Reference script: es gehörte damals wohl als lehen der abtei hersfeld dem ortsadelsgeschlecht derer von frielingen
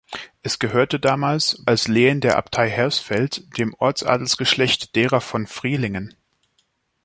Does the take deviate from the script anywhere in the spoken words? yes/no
yes